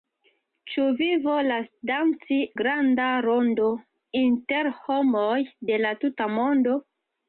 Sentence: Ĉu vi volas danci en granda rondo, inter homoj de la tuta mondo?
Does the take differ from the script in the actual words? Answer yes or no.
yes